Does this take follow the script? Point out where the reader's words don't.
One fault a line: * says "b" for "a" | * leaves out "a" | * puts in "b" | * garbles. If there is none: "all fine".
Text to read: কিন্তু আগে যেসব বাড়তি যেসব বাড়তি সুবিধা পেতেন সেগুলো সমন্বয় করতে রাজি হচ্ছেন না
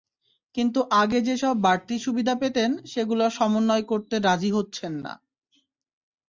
* leaves out "যেসব বাড়তি"